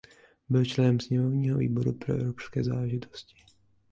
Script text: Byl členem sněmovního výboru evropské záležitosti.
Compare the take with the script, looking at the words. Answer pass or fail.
fail